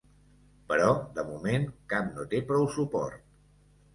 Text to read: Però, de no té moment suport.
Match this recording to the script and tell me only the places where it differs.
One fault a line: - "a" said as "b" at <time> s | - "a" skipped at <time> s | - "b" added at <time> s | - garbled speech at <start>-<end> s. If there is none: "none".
- "moment cap" added at 1.3 s
- "moment" said as "prou" at 2.5 s